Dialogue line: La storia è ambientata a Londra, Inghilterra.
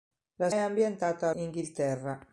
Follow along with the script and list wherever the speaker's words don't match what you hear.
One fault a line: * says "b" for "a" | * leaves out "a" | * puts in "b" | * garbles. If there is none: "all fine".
* leaves out "storia"
* leaves out "Londra"